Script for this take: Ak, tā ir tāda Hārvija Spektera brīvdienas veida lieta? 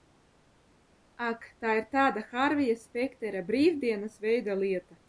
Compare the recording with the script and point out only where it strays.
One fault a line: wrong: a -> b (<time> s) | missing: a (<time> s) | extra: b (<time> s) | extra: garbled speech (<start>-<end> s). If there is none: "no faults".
no faults